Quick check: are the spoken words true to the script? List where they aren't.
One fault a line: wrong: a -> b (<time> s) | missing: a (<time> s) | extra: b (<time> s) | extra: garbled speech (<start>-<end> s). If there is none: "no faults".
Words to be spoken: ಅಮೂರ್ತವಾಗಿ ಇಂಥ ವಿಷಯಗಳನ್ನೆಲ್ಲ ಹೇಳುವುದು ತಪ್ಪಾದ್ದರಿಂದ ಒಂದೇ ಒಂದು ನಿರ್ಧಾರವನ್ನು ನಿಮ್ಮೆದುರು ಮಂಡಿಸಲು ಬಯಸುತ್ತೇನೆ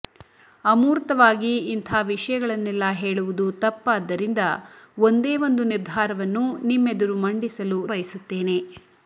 no faults